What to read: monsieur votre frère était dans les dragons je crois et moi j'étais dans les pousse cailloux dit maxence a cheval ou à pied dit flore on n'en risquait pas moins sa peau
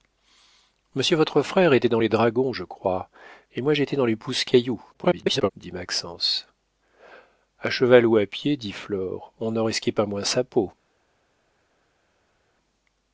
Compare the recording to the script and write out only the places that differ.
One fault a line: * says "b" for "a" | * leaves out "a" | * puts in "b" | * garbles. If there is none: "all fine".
* garbles